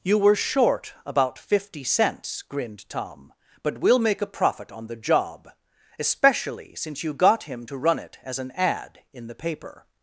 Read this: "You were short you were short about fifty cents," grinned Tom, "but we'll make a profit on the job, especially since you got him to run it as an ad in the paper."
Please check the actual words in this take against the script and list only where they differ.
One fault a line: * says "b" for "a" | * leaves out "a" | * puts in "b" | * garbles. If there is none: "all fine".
* leaves out "you were short"